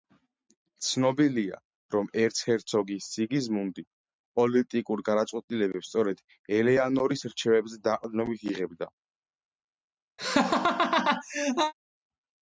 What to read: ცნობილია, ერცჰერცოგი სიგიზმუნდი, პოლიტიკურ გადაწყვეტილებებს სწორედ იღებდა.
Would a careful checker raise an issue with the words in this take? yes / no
yes